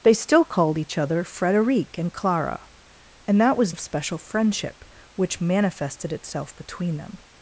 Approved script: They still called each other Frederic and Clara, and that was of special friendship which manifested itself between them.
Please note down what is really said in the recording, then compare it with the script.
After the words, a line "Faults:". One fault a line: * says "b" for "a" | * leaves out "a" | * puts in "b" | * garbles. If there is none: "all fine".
They still called each other Frederic and Clara, and that was of special friendship which manifested itself between them.
Faults:
all fine